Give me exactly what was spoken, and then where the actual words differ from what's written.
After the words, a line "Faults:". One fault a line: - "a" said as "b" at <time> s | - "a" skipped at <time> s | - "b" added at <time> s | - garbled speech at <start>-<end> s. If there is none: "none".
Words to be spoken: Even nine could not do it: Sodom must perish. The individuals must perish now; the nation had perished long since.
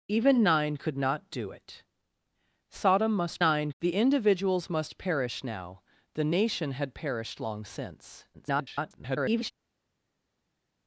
Even nine could not do it: Sodom must nine. The individuals must perish now; the nation had perished long since. [garbled]
Faults:
- "perish" said as "nine" at 3.4 s
- garbled speech at 8.3-9.5 s